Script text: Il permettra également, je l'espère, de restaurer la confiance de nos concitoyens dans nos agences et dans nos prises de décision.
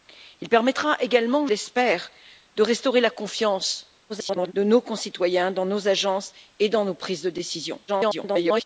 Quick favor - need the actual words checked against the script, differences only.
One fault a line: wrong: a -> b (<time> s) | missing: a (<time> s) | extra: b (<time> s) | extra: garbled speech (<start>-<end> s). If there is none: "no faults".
missing: je (1.5 s)
extra: garbled speech (4.1-4.5 s)
extra: garbled speech (7.9-8.6 s)